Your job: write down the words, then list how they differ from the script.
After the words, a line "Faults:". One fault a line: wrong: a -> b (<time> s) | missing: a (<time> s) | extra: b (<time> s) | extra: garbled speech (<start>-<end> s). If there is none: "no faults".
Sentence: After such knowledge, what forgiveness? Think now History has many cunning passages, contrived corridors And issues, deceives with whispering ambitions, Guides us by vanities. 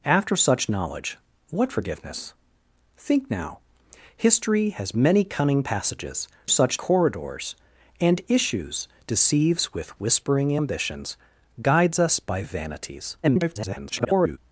After such knowledge, what forgiveness? Think now History has many cunning passages, such corridors And issues, deceives with whispering ambitions, Guides us by vanities. [garbled]
Faults:
wrong: contrived -> such (6.5 s)
extra: garbled speech (13.2-14.4 s)